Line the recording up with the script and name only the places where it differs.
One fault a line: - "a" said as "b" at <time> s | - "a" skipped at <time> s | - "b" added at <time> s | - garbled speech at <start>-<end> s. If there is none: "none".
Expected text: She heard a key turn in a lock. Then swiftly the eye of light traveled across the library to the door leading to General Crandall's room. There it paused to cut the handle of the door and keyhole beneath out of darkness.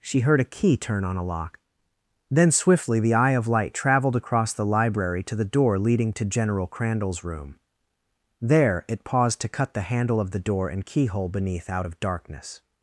- "in" said as "on" at 1.1 s